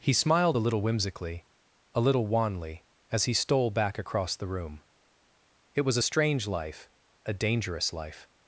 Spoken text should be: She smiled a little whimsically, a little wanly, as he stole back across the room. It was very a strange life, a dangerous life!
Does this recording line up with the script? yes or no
no